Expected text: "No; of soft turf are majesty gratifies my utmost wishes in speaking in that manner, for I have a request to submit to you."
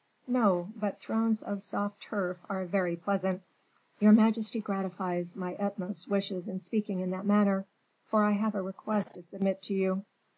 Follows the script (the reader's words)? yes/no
no